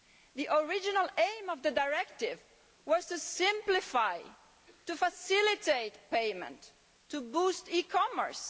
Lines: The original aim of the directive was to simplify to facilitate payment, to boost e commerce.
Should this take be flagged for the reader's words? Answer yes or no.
no